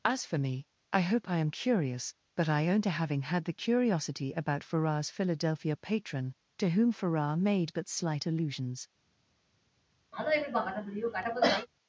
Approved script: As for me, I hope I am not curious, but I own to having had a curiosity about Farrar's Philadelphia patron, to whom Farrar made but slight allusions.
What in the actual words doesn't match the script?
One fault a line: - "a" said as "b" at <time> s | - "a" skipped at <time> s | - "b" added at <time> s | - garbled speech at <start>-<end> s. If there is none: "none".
- "not" skipped at 1.5 s
- "a" said as "the" at 3.4 s